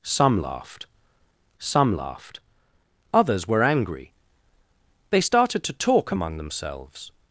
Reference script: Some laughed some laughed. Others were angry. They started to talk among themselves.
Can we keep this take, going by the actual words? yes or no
yes